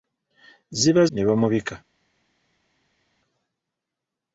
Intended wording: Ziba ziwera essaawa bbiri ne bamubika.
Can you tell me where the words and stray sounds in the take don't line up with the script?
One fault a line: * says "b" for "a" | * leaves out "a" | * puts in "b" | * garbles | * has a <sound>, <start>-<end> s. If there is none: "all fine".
* leaves out "ziwera essaawa bbiri"